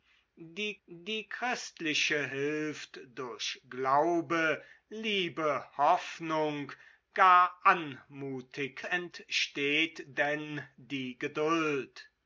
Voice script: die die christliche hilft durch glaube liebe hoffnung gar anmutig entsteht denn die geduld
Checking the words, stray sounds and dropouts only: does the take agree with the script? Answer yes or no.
yes